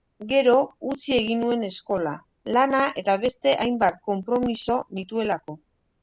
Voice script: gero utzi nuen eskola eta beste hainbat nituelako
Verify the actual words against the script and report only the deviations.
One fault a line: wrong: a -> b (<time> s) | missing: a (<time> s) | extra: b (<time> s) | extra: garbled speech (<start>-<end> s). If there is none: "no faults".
extra: egin (1.2 s)
extra: lana (2.6 s)
extra: konpromiso (4.1 s)